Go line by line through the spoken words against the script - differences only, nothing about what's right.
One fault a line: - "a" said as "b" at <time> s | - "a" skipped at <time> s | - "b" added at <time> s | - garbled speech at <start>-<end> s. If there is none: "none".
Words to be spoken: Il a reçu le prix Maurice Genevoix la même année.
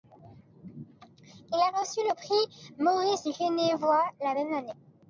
none